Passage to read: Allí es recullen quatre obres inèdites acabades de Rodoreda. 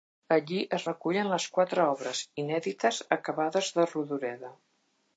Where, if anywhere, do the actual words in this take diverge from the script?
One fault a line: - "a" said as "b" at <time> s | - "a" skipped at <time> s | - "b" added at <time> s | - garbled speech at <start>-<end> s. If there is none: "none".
- "les" added at 1.3 s